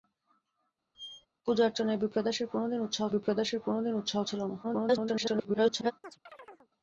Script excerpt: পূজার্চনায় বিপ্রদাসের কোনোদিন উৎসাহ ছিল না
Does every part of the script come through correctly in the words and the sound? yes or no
no